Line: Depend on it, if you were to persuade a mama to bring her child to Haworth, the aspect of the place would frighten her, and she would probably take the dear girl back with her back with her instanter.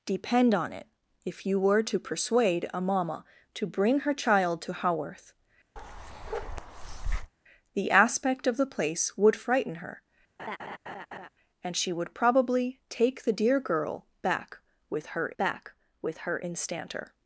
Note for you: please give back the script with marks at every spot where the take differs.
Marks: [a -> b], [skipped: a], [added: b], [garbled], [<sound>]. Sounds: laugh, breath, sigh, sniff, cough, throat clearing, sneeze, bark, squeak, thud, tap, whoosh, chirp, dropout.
Depend on it, if you were to persuade a mama to bring her child to Haworth, [bark] the aspect of the place would frighten her, [laugh] and she would probably take the dear girl back with her back with her instanter.